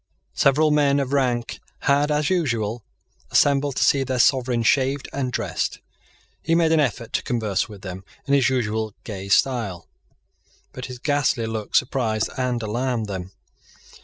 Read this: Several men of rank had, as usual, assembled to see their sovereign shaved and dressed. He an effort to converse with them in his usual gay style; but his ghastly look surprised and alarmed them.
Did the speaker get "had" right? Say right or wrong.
right